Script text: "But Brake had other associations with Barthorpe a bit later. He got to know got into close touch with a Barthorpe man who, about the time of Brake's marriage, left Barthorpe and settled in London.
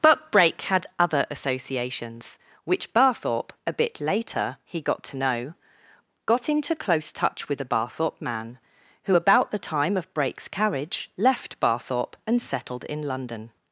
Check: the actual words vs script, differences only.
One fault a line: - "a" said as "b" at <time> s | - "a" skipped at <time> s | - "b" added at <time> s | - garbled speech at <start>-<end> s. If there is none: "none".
- "with" said as "which" at 2.6 s
- "marriage" said as "carriage" at 10.5 s